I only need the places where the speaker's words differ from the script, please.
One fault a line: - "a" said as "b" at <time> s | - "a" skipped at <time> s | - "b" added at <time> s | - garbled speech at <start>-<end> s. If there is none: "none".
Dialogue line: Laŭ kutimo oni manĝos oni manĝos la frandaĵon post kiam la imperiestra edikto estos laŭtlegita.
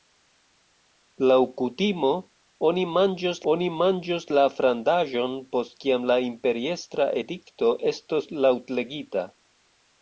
none